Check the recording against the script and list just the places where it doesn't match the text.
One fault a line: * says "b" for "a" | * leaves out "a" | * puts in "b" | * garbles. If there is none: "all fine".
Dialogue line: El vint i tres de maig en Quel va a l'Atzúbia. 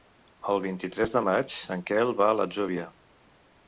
all fine